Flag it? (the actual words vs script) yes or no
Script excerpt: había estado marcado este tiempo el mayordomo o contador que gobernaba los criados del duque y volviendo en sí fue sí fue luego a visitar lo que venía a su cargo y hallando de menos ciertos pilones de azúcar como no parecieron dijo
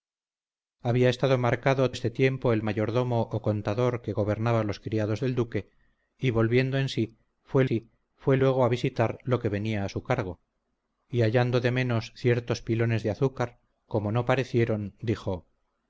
no